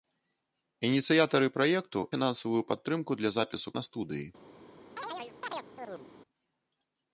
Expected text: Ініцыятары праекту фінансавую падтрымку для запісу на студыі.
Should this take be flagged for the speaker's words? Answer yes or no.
no